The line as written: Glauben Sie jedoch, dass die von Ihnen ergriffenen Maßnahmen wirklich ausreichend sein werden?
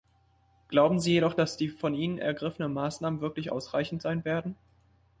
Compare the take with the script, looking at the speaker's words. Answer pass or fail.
pass